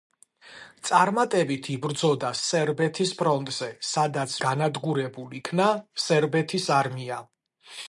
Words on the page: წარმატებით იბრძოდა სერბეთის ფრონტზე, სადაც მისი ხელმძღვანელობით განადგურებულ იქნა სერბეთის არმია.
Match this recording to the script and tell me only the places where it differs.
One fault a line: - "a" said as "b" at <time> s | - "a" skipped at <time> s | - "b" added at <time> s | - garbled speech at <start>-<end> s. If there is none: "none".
- "მისი ხელმძღვანელობით" skipped at 4.3 s